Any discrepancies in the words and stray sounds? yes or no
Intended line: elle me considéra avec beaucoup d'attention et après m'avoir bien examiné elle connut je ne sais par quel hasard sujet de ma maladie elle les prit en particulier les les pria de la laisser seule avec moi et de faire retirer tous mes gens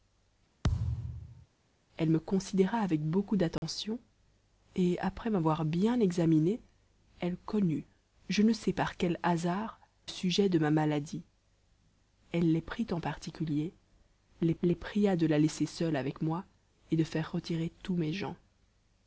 yes